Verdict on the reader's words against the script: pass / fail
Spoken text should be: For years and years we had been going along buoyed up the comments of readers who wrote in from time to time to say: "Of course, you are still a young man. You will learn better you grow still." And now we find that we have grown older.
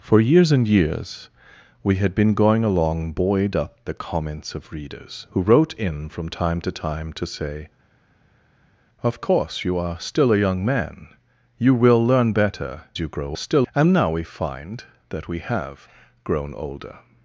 pass